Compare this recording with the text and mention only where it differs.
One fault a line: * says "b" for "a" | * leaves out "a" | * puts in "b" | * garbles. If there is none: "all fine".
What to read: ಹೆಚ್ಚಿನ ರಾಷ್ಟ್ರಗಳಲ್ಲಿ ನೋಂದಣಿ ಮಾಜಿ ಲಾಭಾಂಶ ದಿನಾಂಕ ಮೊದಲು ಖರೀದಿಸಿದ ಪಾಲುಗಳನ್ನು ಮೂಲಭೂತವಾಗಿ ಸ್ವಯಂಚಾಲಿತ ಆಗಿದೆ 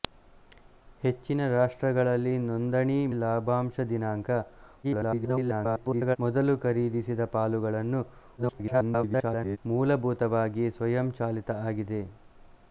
* leaves out "ಮಾಜಿ"
* garbles
* garbles